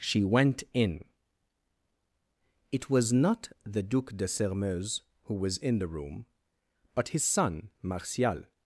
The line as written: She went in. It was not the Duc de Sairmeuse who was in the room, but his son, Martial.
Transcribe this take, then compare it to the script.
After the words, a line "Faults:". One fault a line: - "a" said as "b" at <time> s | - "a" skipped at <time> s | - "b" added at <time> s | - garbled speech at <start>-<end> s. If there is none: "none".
She went in. It was not the Duc de Sairmeuse who was in the room, but his son, Martial.
Faults:
none